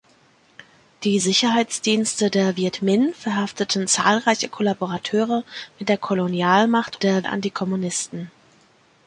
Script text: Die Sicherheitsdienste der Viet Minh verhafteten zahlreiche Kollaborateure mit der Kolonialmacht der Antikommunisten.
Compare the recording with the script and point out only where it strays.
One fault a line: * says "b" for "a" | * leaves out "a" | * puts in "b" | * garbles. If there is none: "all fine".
all fine